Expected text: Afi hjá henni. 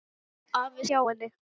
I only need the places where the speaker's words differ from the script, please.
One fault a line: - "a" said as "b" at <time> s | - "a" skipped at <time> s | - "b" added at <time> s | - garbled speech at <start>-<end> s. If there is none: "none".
none